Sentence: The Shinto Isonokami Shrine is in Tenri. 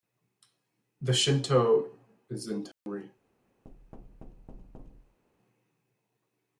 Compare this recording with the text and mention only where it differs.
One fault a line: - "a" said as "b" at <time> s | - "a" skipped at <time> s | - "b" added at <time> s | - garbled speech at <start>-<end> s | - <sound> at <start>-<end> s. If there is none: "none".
- "Isonokami Shrine" skipped at 1.9 s
- dropout at 2.7-2.9 s
- thud at 3.6-5.2 s